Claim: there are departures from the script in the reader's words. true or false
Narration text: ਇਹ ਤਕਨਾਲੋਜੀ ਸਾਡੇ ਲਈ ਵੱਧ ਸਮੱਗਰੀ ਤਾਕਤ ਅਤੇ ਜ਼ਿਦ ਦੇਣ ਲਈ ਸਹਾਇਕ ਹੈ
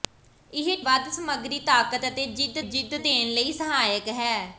true